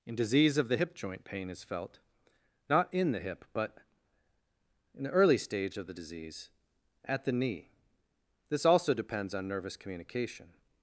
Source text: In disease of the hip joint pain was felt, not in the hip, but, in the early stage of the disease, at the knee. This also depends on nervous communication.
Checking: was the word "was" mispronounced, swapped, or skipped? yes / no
yes